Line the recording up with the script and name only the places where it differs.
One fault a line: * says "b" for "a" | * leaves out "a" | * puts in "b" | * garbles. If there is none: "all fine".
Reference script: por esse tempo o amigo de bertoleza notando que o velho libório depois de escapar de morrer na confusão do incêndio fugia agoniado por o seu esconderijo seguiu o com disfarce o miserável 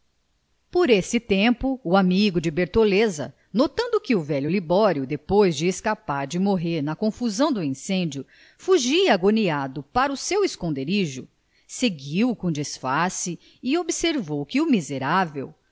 * says "para" for "por"
* puts in "e observou que"